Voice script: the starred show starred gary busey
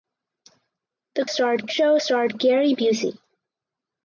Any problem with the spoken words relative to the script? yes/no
no